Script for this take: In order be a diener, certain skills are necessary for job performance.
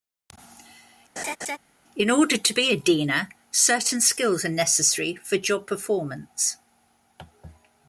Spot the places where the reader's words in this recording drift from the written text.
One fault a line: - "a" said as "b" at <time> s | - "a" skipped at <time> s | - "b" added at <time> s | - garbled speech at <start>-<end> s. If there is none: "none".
- "to" added at 2.4 s